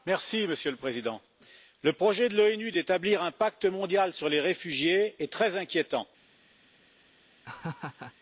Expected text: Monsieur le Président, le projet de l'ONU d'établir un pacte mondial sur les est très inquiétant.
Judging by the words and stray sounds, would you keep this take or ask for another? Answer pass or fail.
fail